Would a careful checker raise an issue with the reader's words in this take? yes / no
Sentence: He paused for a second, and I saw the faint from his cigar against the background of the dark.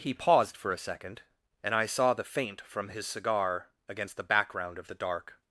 no